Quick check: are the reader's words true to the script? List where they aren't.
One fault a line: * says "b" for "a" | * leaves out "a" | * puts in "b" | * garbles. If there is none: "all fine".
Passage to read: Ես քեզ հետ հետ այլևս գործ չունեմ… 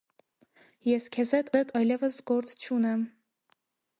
all fine